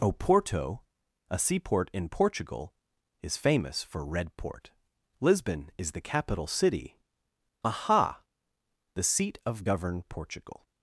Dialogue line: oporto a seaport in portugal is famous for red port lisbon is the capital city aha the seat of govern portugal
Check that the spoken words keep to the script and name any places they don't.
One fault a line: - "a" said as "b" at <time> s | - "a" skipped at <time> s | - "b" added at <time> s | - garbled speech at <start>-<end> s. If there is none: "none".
none